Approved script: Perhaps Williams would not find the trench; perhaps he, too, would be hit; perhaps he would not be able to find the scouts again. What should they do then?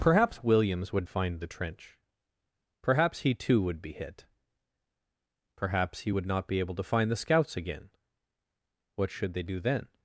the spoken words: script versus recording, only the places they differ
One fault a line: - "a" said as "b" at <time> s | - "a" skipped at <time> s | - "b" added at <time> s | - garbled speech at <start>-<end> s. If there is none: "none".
- "not" skipped at 1.1 s